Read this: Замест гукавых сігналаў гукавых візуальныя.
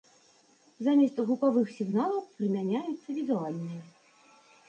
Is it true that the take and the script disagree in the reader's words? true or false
true